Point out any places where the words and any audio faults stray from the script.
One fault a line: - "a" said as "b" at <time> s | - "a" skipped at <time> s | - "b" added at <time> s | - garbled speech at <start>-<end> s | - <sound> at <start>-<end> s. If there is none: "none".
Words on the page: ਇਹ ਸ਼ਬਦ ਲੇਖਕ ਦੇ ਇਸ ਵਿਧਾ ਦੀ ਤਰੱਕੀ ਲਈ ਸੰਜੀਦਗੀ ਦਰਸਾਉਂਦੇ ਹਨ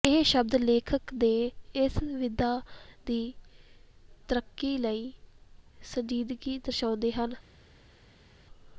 none